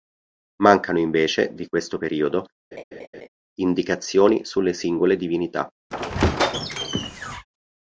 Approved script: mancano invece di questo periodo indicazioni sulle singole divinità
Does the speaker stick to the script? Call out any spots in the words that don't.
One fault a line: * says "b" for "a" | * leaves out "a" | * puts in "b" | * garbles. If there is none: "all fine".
all fine